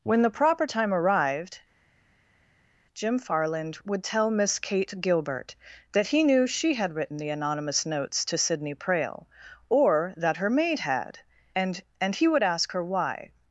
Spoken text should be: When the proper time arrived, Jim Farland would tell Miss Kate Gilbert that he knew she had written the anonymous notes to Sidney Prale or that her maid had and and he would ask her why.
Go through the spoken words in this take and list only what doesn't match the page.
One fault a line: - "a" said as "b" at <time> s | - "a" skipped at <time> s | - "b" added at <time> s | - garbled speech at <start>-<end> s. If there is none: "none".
none